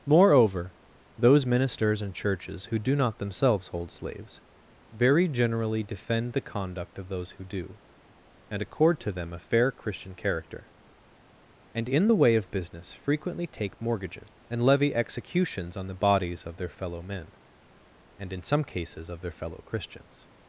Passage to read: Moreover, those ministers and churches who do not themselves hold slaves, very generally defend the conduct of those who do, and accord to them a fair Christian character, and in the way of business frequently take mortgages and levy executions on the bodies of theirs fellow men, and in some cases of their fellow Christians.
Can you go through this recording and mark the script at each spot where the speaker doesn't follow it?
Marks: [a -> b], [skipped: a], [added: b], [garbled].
Moreover, those ministers and churches who do not themselves hold slaves, very generally defend the conduct of those who do, and accord to them a fair Christian character, and in the way of business frequently take mortgages and levy executions on the bodies of [theirs -> their] fellow men, and in some cases of their fellow Christians.